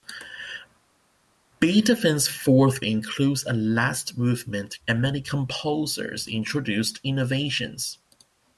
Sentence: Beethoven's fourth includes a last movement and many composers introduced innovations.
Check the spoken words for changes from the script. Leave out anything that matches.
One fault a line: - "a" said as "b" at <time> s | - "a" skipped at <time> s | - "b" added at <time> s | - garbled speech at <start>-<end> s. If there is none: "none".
none